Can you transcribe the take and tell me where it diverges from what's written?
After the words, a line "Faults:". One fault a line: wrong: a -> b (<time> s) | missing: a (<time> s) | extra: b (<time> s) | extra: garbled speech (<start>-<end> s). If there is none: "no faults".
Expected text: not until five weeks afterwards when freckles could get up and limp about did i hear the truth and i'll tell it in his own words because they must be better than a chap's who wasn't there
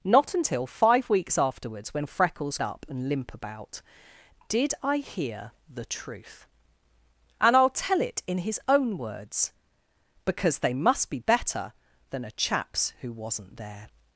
not until five weeks afterwards when freckles up and limp about did i hear the truth and i'll tell it in his own words because they must be better than a chap's who wasn't there
Faults:
missing: could get (2.6 s)